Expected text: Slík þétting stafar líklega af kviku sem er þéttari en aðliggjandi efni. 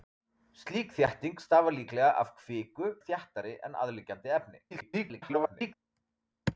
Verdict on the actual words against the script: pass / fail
fail